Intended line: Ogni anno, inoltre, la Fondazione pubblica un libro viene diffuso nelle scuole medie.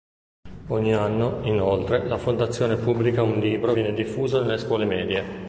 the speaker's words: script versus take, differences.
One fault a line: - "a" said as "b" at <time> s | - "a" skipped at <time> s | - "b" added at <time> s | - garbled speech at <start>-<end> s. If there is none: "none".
none